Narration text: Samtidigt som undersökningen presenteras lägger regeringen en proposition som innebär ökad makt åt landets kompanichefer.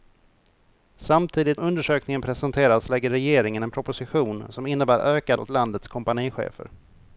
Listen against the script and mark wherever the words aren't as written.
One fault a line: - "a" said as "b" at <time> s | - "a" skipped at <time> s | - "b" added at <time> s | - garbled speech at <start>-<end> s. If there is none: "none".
- "som" skipped at 1.6 s
- "makt" skipped at 5.4 s